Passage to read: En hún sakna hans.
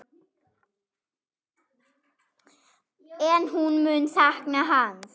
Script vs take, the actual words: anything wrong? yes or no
yes